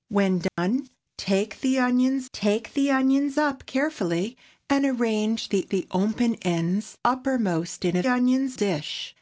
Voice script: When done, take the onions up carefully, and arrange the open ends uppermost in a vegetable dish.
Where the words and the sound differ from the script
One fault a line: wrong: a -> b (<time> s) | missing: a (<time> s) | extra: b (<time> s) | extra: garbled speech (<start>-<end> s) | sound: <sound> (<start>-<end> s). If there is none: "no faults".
sound: dropout (0.5-0.6 s)
extra: take the onions (2.3 s)
extra: the (5.7 s)
wrong: vegetable -> onions (8.1 s)